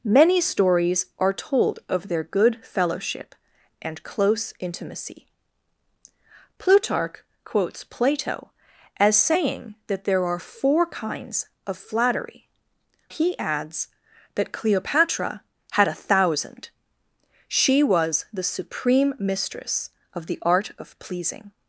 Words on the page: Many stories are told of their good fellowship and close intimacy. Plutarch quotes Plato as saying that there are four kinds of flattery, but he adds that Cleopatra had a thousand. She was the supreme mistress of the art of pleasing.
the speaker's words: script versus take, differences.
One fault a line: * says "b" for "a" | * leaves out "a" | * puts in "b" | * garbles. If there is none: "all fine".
* leaves out "but"